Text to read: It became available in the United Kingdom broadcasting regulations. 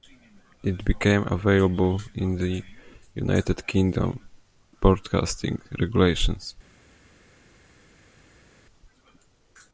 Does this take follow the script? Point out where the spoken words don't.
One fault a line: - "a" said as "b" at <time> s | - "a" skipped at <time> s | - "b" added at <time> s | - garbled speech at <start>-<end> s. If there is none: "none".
none